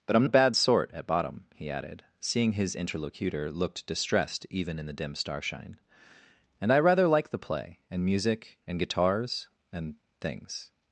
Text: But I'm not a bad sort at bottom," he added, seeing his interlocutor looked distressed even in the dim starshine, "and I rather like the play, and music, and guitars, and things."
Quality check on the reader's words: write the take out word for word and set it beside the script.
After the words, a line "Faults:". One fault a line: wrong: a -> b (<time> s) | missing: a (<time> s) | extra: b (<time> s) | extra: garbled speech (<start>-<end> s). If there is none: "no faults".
But I'm a bad sort at bottom," he added, seeing his interlocutor looked distressed even in the dim starshine, "and I rather like the play, and music, and guitars, and things."
Faults:
missing: not (0.2 s)